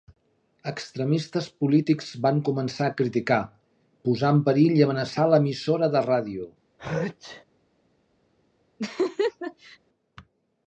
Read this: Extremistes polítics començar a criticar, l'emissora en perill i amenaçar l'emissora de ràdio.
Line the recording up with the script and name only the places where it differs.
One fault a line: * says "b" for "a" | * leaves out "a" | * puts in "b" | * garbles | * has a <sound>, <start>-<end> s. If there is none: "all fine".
* puts in "van"
* says "posar" for "l'emissora"
* has a sneeze, 6.8-7.4 s
* has a laugh, 8.8-9.8 s